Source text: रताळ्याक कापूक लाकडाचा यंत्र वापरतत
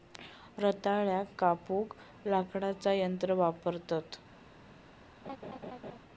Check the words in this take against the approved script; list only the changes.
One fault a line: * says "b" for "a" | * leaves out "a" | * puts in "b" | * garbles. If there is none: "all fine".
all fine